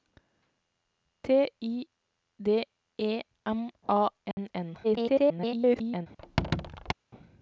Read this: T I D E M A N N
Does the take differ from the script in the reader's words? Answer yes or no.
yes